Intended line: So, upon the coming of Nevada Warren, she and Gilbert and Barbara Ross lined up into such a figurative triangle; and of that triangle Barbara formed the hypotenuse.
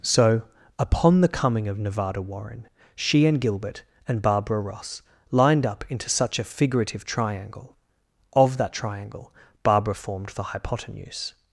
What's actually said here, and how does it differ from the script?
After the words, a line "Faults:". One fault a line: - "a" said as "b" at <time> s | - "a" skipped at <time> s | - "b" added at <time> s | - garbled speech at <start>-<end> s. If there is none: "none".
So, upon the coming of Nevada Warren, she and Gilbert and Barbara Ross lined up into such a figurative triangle; of that triangle Barbara formed the hypotenuse.
Faults:
- "and" skipped at 7.8 s